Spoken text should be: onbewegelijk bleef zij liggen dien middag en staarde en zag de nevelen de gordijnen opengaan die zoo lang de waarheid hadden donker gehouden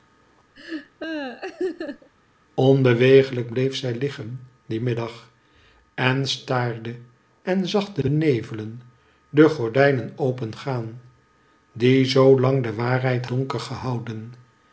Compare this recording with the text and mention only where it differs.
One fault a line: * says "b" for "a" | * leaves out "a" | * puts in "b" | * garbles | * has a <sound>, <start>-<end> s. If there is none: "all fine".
* has a laugh, 0.5-2.1 s
* puts in "de"
* leaves out "hadden"